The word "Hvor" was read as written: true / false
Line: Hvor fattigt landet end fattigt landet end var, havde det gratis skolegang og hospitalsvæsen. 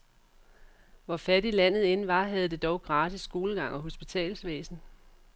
true